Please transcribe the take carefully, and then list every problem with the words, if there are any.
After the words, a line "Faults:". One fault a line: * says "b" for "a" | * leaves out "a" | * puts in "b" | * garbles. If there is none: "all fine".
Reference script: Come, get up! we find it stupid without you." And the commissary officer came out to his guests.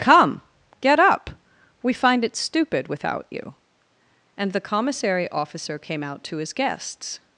Come, get up! we find it stupid without you." And the commissary officer came out to his guests.
Faults:
all fine